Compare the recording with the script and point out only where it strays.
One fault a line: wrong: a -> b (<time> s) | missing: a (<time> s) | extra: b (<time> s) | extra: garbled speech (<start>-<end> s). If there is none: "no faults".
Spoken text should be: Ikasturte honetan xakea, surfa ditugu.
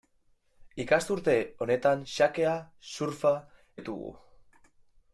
no faults